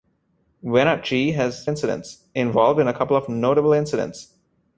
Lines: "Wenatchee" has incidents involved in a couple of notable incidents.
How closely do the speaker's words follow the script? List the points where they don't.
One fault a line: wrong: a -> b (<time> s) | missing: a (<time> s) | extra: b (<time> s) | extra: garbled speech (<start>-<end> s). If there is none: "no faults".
no faults